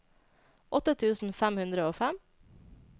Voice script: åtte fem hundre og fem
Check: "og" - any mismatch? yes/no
no